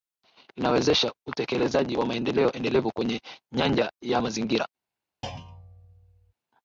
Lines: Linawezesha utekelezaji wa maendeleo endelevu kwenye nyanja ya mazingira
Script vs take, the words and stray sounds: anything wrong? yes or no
yes